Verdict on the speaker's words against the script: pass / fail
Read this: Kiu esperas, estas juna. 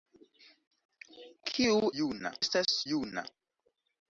fail